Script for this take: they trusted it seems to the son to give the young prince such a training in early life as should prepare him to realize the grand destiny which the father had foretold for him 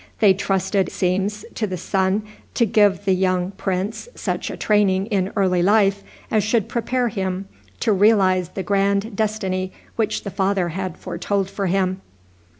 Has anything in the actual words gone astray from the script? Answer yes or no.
yes